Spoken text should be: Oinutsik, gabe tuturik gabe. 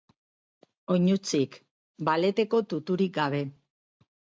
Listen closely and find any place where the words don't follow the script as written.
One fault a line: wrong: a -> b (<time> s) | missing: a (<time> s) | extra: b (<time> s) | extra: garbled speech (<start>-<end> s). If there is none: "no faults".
wrong: gabe -> baleteko (2.1 s)